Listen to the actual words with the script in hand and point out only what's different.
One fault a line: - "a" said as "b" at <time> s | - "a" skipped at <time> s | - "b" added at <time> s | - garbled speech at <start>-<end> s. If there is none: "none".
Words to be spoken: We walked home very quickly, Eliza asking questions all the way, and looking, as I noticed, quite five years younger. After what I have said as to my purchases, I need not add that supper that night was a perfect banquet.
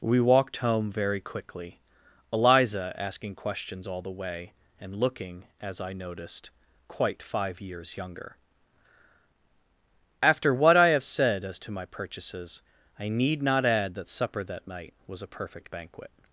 none